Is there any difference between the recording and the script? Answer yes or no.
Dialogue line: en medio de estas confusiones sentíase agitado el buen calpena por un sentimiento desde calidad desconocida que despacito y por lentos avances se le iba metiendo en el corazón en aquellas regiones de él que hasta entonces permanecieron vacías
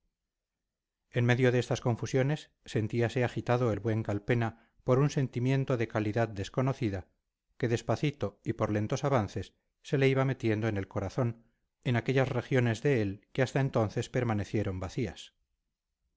yes